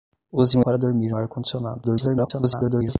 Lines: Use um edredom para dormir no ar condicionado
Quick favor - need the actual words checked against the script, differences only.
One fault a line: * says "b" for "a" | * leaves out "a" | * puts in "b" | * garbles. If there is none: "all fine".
* leaves out "edredom"
* leaves out "no"
* garbles